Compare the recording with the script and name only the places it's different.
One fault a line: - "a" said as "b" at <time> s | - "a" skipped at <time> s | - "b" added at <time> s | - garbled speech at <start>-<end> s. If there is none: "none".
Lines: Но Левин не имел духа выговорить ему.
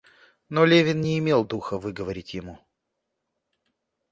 none